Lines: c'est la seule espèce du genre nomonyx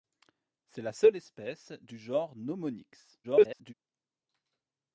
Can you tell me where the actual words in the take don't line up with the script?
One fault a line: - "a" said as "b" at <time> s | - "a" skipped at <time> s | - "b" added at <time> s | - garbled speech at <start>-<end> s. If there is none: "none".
- garbled speech at 3.2-3.7 s